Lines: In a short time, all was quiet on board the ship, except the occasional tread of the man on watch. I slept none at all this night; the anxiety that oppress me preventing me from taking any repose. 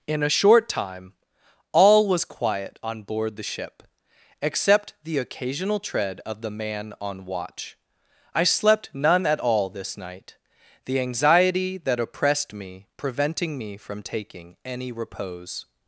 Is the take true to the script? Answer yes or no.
no